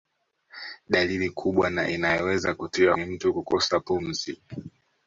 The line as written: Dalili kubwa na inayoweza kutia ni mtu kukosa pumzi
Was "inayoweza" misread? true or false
false